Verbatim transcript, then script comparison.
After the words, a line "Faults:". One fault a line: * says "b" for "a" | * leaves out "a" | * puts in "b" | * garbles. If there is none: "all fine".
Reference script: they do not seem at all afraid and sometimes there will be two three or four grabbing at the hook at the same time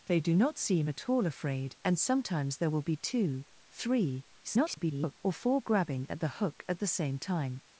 they do not seem at all afraid and sometimes there will be two three [garbled] or four grabbing at the hook at the same time
Faults:
* garbles